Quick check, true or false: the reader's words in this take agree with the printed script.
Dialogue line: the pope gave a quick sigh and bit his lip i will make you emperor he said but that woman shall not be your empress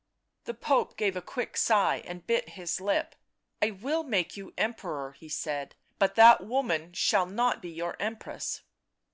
true